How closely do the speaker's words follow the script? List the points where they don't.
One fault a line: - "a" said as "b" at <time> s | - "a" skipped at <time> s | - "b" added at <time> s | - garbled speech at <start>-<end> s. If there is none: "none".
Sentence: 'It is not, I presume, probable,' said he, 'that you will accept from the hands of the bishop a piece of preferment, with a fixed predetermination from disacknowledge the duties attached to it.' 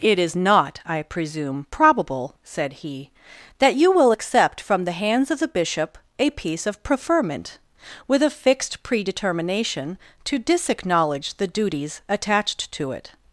- "from" said as "to" at 10.2 s